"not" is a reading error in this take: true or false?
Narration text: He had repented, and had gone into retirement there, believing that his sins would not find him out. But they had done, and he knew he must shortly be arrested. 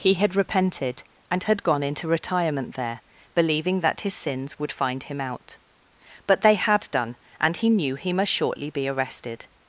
true